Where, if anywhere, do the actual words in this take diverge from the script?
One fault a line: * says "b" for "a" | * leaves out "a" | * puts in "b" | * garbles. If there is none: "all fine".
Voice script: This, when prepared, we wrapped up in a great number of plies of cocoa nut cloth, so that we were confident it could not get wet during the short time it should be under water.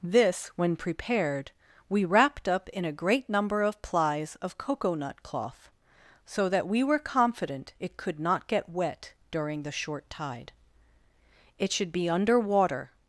* says "tide" for "time"